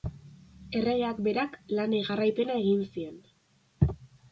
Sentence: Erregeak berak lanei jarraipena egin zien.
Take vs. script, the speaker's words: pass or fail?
pass